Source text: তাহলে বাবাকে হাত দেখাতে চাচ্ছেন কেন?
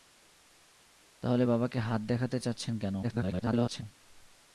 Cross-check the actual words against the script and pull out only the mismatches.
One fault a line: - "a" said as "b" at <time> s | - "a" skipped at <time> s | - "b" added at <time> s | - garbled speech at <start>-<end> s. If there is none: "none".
- garbled speech at 3.0-3.8 s